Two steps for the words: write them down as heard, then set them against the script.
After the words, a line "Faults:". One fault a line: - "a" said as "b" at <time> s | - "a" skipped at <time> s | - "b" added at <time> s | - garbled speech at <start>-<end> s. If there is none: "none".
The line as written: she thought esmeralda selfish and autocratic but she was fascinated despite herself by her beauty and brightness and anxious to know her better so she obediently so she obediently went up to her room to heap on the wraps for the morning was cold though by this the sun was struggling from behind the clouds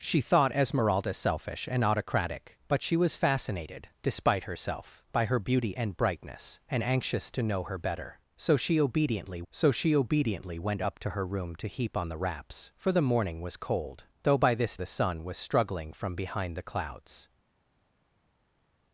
she thought esmeralda selfish and autocratic but she was fascinated despite herself by her beauty and brightness and anxious to know her better so she obediently so she obediently went up to her room to heap on the wraps for the morning was cold though by this the sun was struggling from behind the clouds
Faults:
none